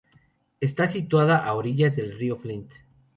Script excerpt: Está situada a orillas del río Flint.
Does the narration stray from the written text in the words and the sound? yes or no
no